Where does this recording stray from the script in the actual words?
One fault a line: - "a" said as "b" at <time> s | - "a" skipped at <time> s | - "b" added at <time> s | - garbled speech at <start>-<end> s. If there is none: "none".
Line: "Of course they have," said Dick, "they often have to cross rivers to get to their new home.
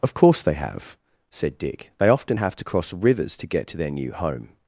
none